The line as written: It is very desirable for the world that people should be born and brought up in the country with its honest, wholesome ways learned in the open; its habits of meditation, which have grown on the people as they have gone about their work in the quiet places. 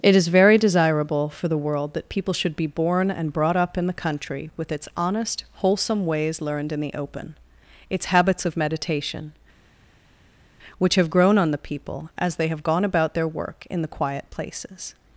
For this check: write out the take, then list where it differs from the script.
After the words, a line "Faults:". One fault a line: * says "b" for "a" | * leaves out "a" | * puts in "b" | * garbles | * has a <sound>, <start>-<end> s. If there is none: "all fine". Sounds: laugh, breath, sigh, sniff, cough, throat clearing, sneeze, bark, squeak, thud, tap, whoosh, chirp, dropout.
It is very desirable for the world that people should be born and brought up in the country with its honest, wholesome ways learned in the open; its habits of meditation, which have grown on the people as they have gone about their work in the quiet places.
Faults:
all fine